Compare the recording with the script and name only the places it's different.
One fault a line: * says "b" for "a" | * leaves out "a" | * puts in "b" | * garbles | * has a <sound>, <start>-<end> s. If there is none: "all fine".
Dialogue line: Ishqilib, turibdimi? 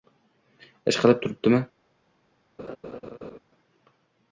* has a laugh, 2.6-3.4 s